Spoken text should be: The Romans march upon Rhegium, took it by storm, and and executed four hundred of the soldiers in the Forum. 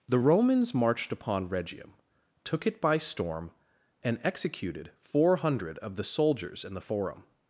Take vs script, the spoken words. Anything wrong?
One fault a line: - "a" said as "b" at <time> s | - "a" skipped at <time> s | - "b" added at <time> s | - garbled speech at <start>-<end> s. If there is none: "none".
- "march" said as "marched" at 0.7 s
- "and" skipped at 4.2 s